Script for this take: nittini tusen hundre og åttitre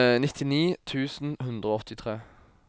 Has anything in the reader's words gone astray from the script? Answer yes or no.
no